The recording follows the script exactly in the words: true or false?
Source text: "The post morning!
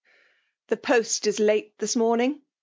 false